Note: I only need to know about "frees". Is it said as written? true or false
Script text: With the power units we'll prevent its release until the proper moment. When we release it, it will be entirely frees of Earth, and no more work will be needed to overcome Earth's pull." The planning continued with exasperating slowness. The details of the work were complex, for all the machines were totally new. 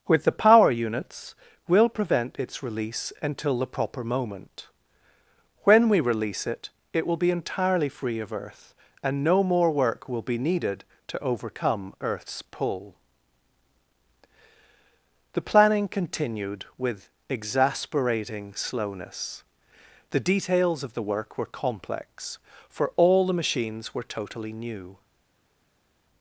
false